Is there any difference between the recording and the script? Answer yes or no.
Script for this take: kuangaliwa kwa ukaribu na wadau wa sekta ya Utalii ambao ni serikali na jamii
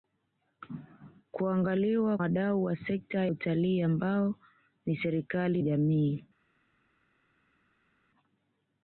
yes